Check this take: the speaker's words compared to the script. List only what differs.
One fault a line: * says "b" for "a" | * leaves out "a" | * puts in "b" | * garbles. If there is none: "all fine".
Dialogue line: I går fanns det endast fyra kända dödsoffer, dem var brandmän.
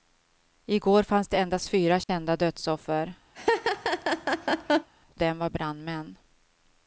all fine